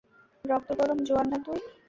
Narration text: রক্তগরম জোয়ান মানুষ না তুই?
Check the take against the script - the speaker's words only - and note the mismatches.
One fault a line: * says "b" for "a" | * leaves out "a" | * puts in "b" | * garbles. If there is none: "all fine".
* leaves out "মানুষ"